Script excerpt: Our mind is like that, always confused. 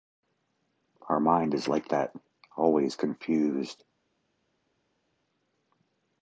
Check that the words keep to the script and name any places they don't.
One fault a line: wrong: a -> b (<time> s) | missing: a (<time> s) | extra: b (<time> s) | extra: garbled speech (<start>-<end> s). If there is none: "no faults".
no faults